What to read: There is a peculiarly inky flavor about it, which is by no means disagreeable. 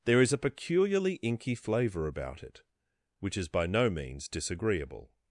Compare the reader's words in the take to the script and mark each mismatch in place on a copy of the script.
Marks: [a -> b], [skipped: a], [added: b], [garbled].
There is a peculiarly inky flavor about it, which is by no means disagreeable.